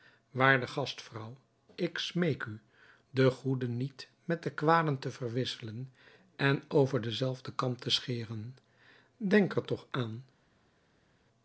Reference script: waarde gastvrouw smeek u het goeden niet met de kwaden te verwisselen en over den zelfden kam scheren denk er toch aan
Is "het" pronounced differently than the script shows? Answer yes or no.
yes